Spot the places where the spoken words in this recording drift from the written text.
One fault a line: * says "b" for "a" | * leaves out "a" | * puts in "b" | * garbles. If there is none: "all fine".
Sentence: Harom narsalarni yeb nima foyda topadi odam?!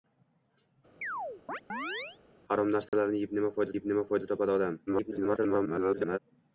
* puts in "yeb nima foyda"
* garbles